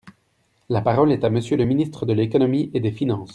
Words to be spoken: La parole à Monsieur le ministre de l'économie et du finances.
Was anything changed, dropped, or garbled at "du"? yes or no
yes